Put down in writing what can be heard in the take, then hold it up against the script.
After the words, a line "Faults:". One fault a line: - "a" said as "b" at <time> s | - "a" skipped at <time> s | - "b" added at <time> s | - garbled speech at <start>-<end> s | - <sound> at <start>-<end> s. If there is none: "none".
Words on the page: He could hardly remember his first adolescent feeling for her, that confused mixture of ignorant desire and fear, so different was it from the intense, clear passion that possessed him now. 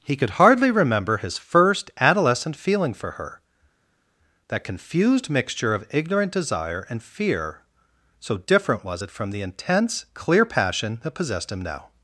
He could hardly remember his first adolescent feeling for her, that confused mixture of ignorant desire and fear, so different was it from the intense, clear passion that possessed him now.
Faults:
none